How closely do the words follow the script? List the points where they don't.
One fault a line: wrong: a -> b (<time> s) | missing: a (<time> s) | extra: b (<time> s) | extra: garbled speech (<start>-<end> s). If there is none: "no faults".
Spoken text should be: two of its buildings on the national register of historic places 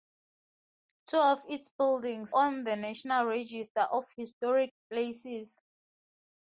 no faults